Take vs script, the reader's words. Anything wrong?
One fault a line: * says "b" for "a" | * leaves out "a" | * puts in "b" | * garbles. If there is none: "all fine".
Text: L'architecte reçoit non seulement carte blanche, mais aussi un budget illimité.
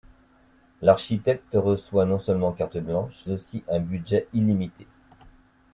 * leaves out "mais"